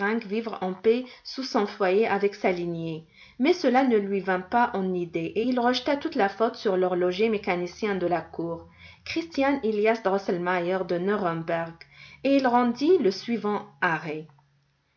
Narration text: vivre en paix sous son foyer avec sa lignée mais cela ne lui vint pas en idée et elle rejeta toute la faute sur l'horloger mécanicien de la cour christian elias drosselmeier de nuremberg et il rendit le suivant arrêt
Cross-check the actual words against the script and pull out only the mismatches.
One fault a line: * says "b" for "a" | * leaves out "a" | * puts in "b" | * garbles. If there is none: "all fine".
* says "il" for "elle"